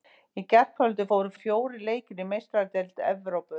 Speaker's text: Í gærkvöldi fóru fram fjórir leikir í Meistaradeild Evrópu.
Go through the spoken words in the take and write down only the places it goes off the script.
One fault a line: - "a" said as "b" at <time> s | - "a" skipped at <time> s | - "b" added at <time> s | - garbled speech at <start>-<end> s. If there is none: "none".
- "fram" skipped at 1.3 s